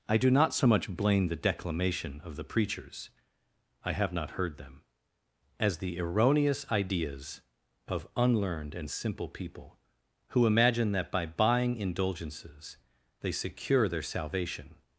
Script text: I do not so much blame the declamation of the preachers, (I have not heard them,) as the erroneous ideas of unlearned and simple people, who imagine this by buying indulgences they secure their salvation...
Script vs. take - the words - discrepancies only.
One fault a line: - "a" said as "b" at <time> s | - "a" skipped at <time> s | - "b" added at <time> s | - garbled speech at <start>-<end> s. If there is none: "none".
- "this" said as "that" at 10.9 s